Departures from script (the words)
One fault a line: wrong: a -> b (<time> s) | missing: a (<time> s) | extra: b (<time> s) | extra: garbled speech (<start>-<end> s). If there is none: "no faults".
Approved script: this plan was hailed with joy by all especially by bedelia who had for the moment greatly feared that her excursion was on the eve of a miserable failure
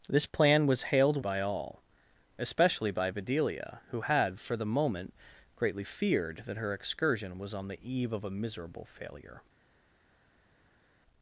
missing: with joy (1.2 s)